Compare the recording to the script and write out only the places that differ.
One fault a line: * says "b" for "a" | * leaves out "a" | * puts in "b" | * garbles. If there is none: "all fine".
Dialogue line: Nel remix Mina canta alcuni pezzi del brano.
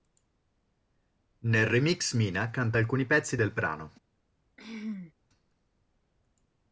all fine